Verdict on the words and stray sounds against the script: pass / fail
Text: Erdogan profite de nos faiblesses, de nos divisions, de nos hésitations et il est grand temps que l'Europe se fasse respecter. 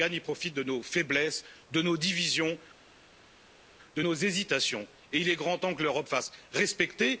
fail